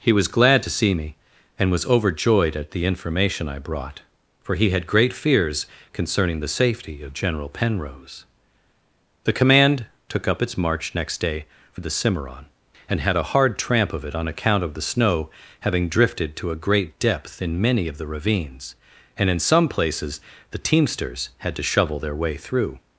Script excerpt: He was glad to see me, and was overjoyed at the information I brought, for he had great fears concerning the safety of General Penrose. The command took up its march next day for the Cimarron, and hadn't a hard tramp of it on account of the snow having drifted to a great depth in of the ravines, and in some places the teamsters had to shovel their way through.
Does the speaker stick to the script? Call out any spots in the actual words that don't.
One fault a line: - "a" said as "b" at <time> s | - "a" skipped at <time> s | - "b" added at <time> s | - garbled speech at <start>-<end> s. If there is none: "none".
- "hadn't" said as "had" at 13.0 s
- "many" added at 17.6 s